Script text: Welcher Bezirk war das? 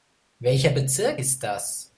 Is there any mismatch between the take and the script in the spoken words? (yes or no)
yes